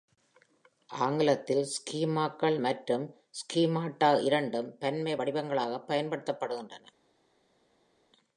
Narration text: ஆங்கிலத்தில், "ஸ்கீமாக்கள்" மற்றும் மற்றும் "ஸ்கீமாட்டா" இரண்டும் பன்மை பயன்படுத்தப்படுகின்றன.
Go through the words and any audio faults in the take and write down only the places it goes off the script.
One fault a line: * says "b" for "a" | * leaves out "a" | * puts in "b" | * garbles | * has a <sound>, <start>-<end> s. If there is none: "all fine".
* leaves out "மற்றும்"
* puts in "வடிவங்களாகப்"